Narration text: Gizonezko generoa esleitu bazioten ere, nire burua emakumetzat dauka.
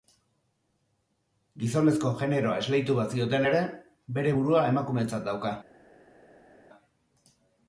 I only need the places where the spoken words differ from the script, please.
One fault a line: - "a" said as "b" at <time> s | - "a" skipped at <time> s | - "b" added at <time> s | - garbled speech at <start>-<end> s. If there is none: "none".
- "nire" said as "bere" at 4.2 s